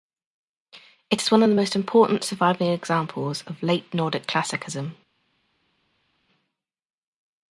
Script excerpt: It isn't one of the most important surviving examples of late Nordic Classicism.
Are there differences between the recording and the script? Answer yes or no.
yes